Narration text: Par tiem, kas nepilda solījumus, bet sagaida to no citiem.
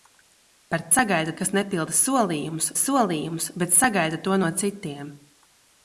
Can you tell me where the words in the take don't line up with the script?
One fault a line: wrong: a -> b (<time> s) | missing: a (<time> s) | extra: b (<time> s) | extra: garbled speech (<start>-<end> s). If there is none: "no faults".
wrong: tiem -> sagaida (0.9 s)
extra: solījumus (2.8 s)